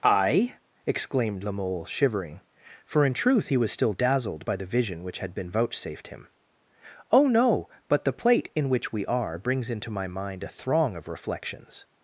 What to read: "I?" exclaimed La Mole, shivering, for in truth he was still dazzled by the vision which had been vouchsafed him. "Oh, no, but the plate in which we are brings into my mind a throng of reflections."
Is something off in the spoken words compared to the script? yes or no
no